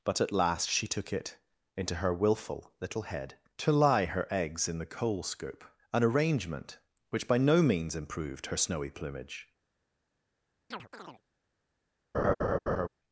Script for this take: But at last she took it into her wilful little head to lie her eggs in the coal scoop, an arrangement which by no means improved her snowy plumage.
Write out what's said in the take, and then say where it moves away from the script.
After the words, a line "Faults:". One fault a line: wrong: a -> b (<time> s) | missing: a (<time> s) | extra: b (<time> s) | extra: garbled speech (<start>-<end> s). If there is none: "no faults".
But at last she took it into her wilful little head to lie her eggs in the coal scoop, an arrangement which by no means improved her snowy plumage.
Faults:
no faults